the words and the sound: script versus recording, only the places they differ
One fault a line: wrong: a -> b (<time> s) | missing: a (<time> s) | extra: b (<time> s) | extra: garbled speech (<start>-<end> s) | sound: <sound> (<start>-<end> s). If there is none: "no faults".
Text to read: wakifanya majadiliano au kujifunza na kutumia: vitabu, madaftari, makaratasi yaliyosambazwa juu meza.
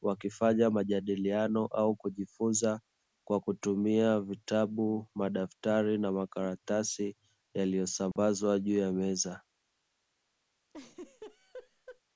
wrong: na -> kwa (3.2 s)
extra: na (6.0 s)
sound: dropout (8.1-8.2 s)
extra: ya (8.8 s)
sound: laugh (10.7-12.0 s)